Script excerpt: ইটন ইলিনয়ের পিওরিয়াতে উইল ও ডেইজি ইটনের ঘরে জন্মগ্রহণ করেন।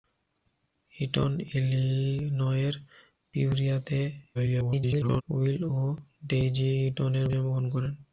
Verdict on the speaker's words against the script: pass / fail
fail